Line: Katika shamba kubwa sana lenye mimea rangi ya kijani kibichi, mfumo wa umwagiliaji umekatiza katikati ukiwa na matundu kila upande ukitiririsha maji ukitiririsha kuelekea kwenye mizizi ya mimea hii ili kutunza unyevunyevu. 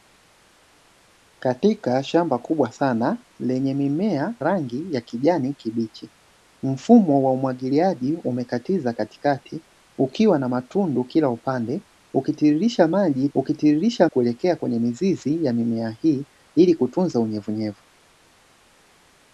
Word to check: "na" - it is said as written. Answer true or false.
true